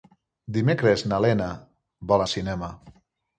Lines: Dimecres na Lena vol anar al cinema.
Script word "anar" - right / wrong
wrong